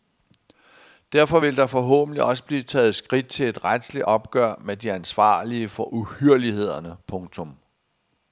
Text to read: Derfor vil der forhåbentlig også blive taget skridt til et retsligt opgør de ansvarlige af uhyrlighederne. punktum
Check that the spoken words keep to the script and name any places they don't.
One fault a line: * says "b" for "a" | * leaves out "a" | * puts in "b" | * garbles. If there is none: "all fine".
* puts in "med"
* says "for" for "af"